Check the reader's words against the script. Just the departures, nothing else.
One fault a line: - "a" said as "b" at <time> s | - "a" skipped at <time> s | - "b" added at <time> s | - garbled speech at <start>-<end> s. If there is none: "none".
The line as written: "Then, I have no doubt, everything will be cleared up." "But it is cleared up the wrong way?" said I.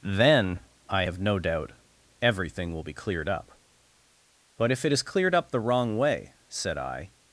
- "if" added at 4.7 s